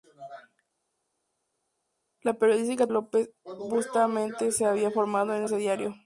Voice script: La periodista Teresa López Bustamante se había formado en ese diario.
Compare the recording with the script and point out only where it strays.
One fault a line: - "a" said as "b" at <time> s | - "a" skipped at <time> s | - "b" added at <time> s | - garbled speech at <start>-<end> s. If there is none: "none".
- "Teresa" skipped at 2.9 s